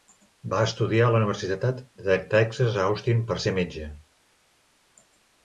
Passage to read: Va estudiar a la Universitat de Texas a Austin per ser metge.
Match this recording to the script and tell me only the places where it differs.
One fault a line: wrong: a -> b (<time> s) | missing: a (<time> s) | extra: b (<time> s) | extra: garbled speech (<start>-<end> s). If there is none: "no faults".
no faults